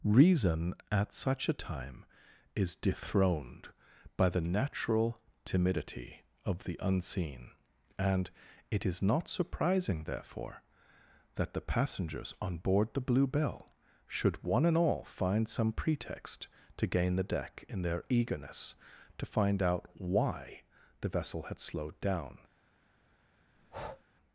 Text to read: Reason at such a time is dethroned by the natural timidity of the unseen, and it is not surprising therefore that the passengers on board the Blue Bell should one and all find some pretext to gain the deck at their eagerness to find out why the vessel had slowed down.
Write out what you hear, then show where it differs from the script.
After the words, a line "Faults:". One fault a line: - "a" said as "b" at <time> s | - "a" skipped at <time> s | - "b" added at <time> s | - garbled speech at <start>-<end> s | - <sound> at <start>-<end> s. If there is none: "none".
Reason at such a time is dethroned by the natural timidity of the unseen, and it is not surprising therefore that the passengers on board the Blue Bell should one and all find some pretext to gain the deck in their eagerness to find out why the vessel had slowed down.
Faults:
- "at" said as "in" at 17.7 s
- breath at 23.6-24.0 s